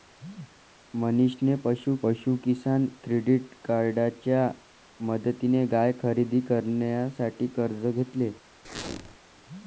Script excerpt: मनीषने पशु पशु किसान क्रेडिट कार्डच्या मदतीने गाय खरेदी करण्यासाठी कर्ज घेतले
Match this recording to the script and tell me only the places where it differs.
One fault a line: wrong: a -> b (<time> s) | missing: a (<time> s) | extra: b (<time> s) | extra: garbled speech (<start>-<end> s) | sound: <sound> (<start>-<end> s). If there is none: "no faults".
sound: squeak (8.6-9.2 s)